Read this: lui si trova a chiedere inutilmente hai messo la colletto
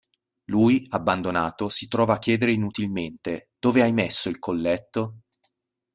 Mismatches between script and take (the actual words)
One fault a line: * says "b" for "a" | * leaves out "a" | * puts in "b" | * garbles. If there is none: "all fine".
* puts in "abbandonato"
* puts in "dove"
* says "il" for "la"